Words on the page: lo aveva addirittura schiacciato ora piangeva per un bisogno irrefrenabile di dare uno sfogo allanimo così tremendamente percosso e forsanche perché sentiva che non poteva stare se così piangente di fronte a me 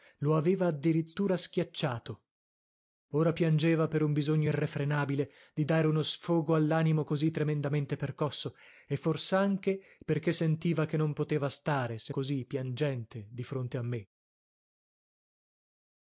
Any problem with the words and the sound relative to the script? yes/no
no